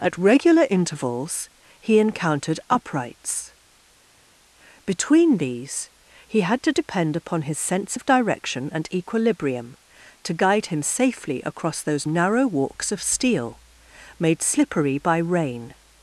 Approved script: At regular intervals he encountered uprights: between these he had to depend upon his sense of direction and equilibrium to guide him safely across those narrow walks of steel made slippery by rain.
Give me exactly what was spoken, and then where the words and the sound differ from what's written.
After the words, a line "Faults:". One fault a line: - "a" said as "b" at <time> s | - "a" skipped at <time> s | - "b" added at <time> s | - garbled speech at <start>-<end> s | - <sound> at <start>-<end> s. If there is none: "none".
At regular intervals he encountered uprights: between these he had to depend upon his sense of direction and equilibrium to guide him safely across those narrow walks of steel made slippery by rain.
Faults:
none